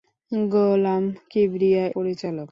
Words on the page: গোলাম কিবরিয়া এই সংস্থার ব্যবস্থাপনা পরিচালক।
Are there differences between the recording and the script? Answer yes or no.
yes